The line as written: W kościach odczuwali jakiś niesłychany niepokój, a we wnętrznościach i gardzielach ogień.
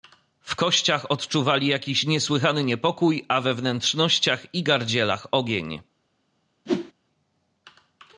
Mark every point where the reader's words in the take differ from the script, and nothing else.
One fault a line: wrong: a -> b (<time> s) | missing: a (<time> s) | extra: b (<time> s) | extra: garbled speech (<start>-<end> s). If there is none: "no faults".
no faults